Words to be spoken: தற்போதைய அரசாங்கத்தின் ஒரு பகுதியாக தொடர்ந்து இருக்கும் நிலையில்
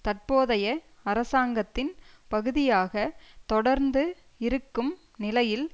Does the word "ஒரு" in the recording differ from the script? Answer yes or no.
yes